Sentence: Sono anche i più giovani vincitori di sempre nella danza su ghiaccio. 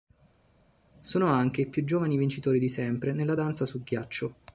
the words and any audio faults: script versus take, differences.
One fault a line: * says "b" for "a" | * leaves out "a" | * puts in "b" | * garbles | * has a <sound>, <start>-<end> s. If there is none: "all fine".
all fine